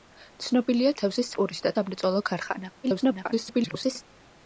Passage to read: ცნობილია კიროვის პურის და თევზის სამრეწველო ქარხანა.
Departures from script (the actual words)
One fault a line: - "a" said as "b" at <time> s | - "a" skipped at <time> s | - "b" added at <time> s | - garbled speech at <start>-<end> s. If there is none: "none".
- "კიროვის" said as "თევზის" at 1.0 s
- "თევზის" skipped at 1.7 s
- garbled speech at 2.8-4.0 s